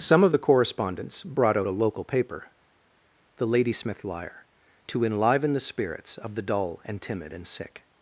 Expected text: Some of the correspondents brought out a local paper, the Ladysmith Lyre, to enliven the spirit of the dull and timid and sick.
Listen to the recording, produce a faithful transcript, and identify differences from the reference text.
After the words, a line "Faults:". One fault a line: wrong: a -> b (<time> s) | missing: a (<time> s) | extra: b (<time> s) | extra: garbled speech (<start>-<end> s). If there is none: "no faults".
Some of the correspondents brought out a local paper, the Ladysmith Lyre, to enliven the spirits of the dull and timid and sick.
Faults:
wrong: spirit -> spirits (5.6 s)